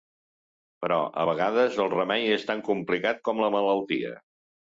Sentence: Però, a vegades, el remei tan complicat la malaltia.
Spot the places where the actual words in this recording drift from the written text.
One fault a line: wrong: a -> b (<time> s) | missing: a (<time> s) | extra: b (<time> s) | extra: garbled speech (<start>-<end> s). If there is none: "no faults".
extra: és (2.4 s)
extra: com (3.3 s)